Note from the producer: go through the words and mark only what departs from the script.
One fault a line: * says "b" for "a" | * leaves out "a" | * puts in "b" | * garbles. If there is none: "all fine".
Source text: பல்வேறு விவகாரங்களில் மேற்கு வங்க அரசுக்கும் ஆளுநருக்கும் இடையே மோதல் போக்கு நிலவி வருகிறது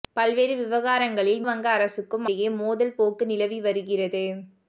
* leaves out "மேற்கு"
* leaves out "ஆளுநருக்கும்"